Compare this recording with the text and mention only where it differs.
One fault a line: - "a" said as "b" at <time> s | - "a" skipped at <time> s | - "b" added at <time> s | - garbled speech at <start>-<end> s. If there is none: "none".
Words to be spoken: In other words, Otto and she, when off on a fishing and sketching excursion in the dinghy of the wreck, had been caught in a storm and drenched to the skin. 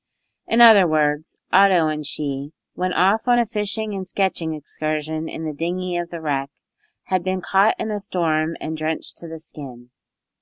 none